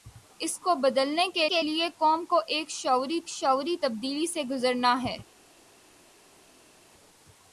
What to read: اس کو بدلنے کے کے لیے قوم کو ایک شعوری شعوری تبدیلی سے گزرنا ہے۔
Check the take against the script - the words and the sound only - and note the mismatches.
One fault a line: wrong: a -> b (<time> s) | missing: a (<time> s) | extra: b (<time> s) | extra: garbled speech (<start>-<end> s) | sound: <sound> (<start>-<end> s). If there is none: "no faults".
no faults